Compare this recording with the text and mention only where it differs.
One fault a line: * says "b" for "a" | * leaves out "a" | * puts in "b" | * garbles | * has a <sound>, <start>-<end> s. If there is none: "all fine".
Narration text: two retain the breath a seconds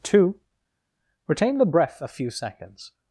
* puts in "few"